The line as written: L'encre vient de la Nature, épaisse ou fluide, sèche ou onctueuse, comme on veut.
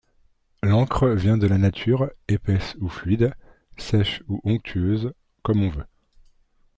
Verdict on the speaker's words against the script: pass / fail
pass